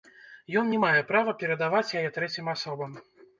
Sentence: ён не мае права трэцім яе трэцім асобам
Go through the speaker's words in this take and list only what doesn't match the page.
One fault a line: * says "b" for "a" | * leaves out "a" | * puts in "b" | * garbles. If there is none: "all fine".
* says "перадаваць" for "трэцім"